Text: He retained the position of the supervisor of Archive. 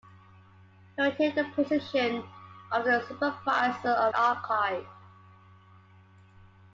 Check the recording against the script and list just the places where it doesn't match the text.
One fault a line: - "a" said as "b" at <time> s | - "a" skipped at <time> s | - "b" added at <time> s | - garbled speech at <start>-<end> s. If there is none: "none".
none